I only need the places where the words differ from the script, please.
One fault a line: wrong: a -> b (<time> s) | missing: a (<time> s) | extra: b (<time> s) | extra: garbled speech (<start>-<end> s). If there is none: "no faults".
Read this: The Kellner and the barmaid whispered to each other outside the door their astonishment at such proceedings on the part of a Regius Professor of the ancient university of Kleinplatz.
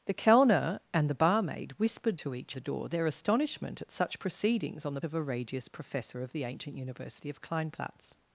missing: other outside (2.5 s)
missing: part (5.0 s)